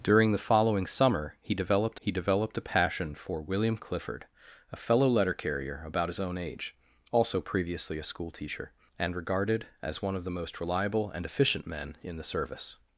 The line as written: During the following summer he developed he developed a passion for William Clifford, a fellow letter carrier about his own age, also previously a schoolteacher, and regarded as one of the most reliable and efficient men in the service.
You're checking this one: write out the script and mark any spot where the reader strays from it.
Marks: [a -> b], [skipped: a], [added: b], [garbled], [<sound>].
During the following summer he developed he developed a passion for William Clifford, a fellow letter carrier about his own age, also previously a schoolteacher, and regarded as one of the most reliable and efficient men in the service.